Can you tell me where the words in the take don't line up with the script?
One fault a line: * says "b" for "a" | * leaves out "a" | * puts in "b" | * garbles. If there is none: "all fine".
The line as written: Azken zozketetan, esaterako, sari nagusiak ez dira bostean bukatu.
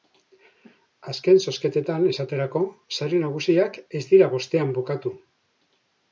all fine